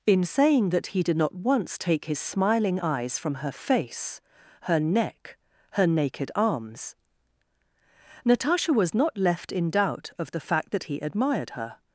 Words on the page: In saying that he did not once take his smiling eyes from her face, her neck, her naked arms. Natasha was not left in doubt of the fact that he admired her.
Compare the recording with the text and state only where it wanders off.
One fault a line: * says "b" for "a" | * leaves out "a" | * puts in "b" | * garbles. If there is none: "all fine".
all fine